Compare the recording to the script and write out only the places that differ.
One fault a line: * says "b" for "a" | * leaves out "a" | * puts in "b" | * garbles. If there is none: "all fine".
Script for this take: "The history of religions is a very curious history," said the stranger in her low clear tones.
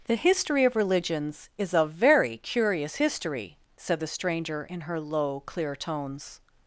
all fine